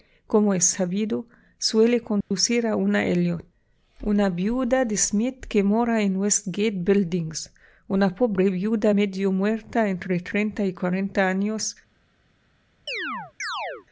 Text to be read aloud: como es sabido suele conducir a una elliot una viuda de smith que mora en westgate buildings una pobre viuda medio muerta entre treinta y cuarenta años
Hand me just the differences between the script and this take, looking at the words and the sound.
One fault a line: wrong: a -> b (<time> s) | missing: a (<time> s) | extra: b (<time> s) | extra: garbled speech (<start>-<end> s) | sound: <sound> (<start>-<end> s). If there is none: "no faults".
sound: dropout (2.2-2.3 s)
sound: chirp (12.9-13.9 s)